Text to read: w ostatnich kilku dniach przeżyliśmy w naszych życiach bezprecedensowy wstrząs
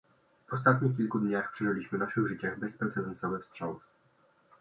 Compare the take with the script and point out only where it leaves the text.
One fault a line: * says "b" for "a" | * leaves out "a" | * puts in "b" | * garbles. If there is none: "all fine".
all fine